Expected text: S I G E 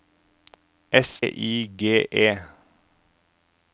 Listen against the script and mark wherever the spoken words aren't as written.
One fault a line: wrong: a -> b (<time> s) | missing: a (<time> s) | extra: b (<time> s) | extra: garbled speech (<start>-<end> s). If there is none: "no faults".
no faults